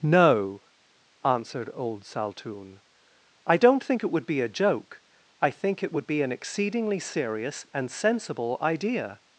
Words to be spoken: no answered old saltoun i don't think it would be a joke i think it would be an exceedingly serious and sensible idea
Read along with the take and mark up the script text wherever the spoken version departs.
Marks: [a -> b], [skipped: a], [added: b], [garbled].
no answered old saltoun i don't think it would be a joke i think it would be an exceedingly serious and sensible idea